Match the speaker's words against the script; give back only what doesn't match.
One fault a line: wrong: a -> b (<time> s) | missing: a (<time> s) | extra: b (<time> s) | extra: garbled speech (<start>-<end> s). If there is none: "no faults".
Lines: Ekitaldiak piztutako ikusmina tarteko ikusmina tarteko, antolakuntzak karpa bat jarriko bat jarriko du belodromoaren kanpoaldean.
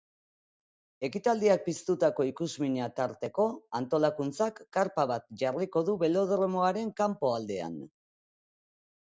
missing: ikusmina tarteko (3.5 s)
missing: bat jarriko (5.8 s)